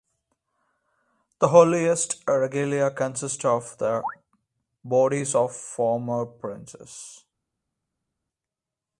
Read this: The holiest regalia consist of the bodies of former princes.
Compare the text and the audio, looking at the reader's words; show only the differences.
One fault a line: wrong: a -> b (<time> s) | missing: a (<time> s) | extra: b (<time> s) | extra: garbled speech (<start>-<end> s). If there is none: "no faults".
no faults